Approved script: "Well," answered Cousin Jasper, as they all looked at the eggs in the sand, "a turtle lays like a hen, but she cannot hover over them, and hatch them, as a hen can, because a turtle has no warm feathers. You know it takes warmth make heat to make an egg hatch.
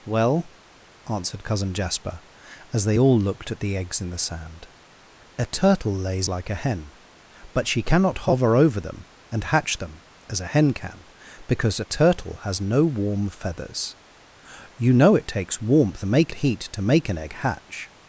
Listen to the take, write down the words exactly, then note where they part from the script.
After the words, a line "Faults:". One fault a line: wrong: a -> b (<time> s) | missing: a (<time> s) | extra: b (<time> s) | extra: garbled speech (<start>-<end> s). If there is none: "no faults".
"Well," answered Cousin Jasper, as they all looked at the eggs in the sand, "a turtle lays like a hen, but she cannot hover over them, and hatch them, as a hen can, because a turtle has no warm feathers. You know it takes warmth make heat to make an egg hatch.
Faults:
no faults